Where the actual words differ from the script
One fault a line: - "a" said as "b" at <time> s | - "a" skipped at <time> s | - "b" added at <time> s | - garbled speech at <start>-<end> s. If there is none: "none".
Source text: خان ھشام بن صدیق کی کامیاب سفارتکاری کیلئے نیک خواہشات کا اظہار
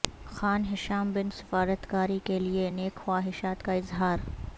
- "صدیق کی کامیاب" skipped at 1.3 s